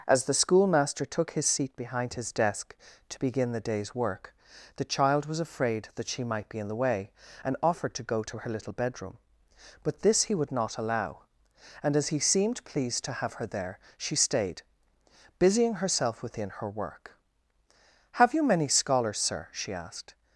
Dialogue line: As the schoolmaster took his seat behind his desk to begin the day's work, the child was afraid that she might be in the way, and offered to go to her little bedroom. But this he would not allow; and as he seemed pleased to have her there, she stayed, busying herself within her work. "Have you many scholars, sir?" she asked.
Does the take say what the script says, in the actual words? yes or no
yes